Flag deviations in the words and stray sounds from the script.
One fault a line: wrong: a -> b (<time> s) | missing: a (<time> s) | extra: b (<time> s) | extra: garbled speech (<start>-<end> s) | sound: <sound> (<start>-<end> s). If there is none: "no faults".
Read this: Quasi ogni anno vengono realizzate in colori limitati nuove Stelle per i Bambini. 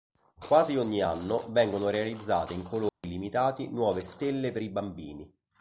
sound: dropout (2.9-3.0 s)